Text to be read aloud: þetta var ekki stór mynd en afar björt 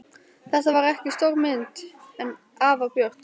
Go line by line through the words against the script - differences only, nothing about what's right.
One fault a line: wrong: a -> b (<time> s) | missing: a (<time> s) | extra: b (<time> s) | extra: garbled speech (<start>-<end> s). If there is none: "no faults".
no faults